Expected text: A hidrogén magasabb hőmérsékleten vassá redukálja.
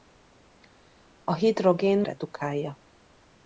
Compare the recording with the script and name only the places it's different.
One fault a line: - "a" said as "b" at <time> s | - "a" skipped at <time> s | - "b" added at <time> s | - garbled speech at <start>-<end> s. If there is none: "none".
- "magasabb hőmérsékleten vassá" skipped at 2.0 s